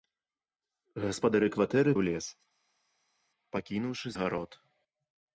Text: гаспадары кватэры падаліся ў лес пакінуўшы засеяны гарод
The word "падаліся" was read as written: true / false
false